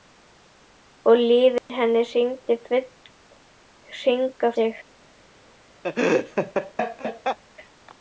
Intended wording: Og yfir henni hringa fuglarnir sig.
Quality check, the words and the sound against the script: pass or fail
fail